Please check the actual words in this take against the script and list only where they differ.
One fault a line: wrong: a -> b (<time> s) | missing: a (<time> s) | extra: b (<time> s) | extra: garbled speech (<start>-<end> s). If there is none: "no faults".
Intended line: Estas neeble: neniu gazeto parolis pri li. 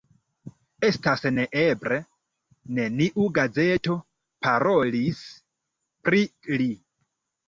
no faults